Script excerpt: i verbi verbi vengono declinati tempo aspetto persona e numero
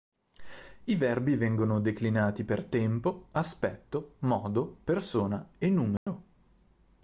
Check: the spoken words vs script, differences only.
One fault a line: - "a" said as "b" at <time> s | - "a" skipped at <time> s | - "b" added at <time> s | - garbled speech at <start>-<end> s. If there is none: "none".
- "verbi" skipped at 1.4 s
- "per" added at 2.4 s
- "modo" added at 4.2 s